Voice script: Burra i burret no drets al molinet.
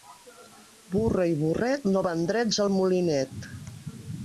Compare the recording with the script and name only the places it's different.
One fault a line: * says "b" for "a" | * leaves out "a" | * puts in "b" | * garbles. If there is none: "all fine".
* puts in "van"